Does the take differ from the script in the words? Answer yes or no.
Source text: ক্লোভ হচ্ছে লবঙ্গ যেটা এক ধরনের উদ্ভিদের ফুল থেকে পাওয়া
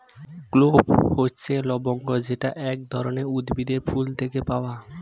no